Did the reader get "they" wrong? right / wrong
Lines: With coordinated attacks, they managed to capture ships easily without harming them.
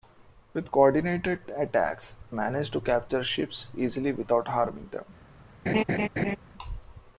wrong